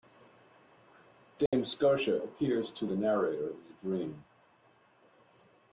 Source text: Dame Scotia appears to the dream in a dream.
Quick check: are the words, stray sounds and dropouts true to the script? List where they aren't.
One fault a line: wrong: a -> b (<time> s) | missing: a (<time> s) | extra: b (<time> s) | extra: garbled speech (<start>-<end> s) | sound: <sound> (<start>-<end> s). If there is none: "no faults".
sound: dropout (1.5-1.5 s)
wrong: dream -> narrator (2.9 s)